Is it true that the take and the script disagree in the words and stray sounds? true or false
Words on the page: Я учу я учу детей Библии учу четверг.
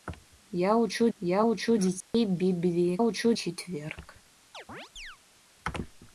true